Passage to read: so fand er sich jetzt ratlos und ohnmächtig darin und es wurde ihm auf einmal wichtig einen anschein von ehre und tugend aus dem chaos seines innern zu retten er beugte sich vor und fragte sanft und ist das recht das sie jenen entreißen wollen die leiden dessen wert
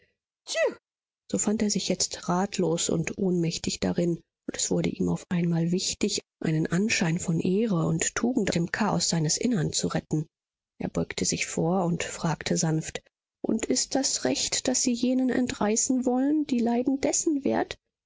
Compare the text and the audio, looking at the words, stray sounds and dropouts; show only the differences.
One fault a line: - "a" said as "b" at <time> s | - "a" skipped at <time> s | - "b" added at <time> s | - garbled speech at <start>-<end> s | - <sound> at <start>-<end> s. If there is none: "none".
- sneeze at 0.5-0.8 s
- "aus" skipped at 8.5 s